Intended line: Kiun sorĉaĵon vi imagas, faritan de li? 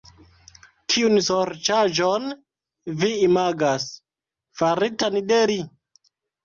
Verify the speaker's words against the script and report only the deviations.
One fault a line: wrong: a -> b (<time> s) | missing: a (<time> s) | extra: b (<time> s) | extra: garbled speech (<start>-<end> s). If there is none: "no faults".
no faults